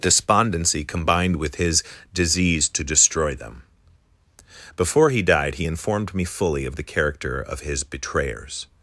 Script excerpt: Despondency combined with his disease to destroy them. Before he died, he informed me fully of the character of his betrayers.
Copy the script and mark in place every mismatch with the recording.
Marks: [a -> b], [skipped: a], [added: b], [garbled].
Despondency combined with his disease to destroy them. Before he died, he informed me fully of the character of his betrayers.